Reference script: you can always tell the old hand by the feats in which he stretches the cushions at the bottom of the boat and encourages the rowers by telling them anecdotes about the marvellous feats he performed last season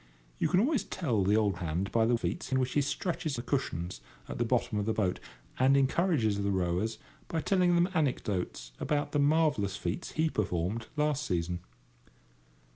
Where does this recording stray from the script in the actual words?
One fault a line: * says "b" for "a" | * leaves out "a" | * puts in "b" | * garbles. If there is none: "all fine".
all fine